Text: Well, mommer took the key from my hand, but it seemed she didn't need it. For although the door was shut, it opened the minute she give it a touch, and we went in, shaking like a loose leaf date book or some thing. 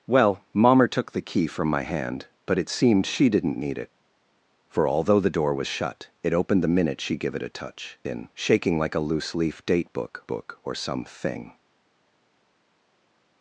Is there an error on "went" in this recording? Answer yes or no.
yes